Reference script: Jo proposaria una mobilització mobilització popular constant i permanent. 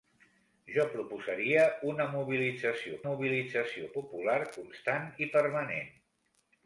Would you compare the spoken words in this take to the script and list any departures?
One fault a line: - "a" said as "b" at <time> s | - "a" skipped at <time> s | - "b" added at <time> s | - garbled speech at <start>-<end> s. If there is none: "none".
none